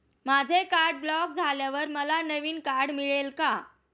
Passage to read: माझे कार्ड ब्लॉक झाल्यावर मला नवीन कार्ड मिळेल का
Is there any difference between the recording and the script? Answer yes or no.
no